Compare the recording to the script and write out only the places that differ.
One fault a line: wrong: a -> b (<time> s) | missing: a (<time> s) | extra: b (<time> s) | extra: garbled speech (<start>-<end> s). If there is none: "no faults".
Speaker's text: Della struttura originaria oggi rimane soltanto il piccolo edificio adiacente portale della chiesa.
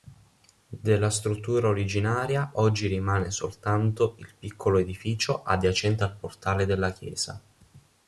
extra: al (6.0 s)